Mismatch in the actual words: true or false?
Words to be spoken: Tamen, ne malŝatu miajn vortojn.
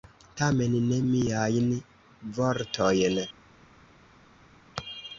true